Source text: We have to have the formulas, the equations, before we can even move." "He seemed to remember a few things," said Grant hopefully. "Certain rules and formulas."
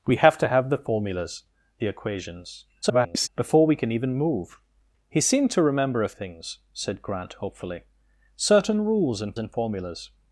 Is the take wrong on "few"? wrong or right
wrong